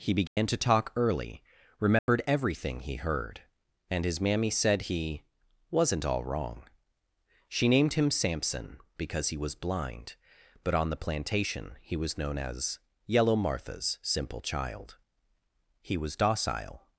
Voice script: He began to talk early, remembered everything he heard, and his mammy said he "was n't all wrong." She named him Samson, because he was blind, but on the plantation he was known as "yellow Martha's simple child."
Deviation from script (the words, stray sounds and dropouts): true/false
true